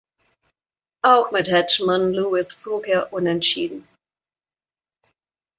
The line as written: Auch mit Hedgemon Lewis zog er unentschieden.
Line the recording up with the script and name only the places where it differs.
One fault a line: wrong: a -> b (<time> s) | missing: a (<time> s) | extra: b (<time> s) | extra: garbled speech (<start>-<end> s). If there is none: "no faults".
no faults